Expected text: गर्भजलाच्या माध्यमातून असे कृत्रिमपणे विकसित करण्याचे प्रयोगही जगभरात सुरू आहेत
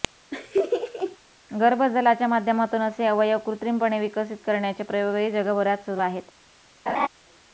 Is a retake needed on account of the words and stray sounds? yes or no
yes